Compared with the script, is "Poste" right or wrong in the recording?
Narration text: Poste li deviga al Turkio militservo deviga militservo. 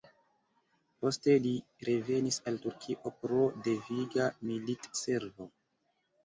right